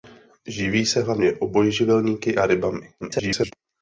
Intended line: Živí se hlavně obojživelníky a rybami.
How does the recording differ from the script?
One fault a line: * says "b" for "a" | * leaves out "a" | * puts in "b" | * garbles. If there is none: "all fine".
* garbles